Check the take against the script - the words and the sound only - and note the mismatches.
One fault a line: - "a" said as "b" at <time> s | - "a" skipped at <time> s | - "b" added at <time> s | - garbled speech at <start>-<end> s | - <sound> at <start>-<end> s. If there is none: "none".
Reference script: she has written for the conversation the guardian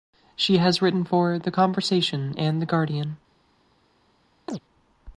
- "and" added at 2.4 s
- chirp at 4.5-4.6 s